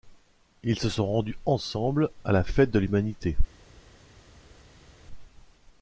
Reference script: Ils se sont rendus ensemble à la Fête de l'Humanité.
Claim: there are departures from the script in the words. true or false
false